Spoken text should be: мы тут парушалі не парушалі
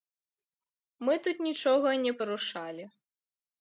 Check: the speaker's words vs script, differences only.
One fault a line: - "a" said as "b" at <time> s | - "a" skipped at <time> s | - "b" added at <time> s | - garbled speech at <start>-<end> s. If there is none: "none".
- "парушалі" said as "нічога" at 1.5 s